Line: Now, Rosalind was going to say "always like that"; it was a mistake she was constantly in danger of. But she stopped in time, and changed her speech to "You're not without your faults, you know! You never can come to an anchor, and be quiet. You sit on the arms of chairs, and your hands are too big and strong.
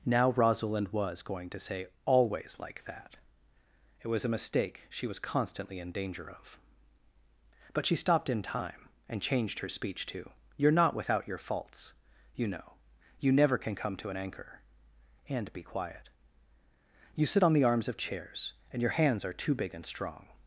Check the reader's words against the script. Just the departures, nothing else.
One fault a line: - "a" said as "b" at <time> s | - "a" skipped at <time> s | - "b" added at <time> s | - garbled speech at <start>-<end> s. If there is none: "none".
none